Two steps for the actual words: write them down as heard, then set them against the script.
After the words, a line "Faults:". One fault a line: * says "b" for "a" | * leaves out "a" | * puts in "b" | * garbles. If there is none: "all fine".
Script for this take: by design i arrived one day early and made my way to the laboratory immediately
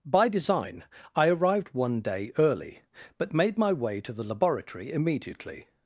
by design i arrived one day early but made my way to the laboratory immediately
Faults:
* says "but" for "and"